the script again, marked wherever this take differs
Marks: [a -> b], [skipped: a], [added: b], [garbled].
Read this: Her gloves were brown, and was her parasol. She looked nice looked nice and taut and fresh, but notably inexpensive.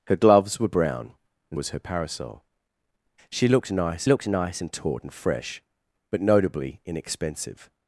Her gloves were brown, and was her parasol. She looked nice looked nice and taut and fresh, but notably inexpensive.